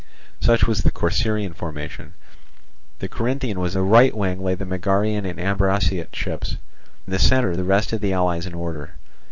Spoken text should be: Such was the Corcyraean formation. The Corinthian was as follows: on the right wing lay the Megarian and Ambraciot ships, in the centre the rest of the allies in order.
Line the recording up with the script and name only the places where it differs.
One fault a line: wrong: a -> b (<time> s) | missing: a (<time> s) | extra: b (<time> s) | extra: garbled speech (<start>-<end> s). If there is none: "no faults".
missing: as follows on (3.8 s)
missing: in (6.6 s)